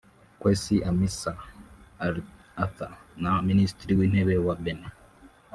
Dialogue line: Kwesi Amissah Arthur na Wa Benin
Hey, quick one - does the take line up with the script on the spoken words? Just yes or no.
no